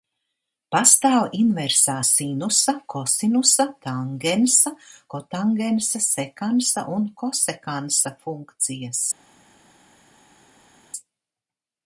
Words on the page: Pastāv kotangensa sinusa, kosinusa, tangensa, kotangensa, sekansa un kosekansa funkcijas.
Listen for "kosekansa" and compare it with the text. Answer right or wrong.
right